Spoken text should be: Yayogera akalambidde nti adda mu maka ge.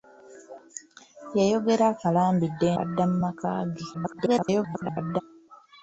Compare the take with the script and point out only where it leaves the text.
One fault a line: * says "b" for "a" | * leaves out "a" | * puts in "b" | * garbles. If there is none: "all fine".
* leaves out "nti"
* garbles